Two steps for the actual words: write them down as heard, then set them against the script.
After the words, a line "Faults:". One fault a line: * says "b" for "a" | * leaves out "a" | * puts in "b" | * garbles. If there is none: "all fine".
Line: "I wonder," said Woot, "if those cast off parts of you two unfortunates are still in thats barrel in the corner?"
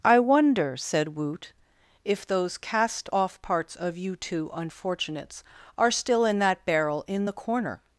"I wonder," said Woot, "if those cast off parts of you two unfortunates are still in that barrel in the corner?"
Faults:
* says "that" for "thats"